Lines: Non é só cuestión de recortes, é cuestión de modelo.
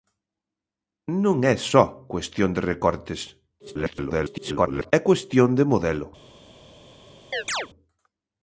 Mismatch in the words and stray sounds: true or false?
true